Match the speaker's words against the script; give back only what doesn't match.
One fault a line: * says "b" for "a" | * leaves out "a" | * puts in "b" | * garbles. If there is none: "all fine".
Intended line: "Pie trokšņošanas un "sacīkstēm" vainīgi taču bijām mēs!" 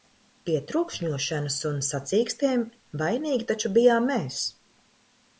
all fine